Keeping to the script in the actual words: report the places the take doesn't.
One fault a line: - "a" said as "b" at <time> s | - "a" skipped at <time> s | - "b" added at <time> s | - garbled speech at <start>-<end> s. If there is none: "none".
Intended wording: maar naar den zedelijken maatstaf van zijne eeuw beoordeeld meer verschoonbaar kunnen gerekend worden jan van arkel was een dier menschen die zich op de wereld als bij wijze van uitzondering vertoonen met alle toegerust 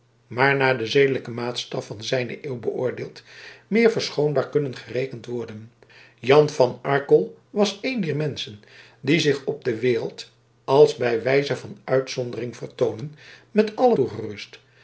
none